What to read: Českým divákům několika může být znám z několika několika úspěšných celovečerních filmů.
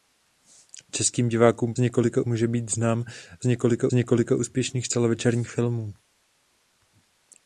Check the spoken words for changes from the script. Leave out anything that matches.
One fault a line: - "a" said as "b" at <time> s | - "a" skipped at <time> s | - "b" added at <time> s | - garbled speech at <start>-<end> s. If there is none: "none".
none